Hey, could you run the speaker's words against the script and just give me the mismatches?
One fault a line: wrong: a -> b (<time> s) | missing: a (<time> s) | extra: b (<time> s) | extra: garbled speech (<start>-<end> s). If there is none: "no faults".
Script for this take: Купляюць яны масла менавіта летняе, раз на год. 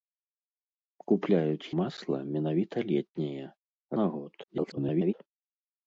missing: яны (1.7 s)
missing: раз (3.4 s)
extra: garbled speech (4.4-5.1 s)